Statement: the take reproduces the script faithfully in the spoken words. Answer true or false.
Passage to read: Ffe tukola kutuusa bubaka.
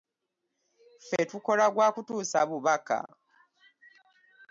false